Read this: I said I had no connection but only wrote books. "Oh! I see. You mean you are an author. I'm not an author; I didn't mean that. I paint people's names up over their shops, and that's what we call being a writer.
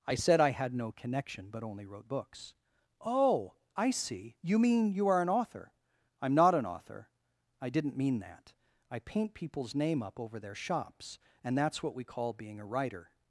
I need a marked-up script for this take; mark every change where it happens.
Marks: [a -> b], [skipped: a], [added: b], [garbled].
I said I had no connection but only wrote books. "Oh! I see. You mean you are an author. I'm not an author; I didn't mean that. I paint people's [names -> name] up over their shops, and that's what we call being a writer.